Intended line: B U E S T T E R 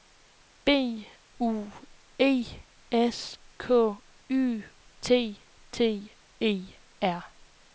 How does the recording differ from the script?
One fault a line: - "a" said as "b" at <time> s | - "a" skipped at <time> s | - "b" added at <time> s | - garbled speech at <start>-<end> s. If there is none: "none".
- "K Y" added at 3.6 s